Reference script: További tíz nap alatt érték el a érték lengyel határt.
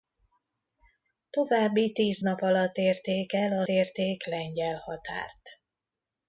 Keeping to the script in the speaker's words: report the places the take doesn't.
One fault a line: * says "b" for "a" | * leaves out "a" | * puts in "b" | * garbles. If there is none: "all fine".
all fine